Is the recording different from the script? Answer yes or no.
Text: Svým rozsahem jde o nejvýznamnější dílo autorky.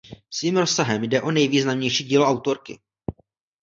no